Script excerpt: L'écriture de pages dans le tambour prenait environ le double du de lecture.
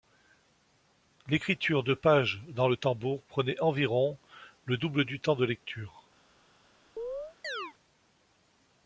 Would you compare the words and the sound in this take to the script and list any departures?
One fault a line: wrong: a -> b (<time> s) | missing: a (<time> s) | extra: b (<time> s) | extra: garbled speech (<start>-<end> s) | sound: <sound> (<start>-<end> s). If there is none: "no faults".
extra: temps (5.2 s)
sound: chirp (7.0-7.7 s)